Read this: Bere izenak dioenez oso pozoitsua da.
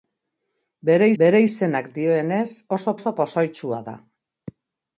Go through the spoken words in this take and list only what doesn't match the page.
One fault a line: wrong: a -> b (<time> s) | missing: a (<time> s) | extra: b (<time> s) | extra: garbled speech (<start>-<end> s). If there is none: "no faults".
extra: bere (1.2 s)
extra: oso (3.0 s)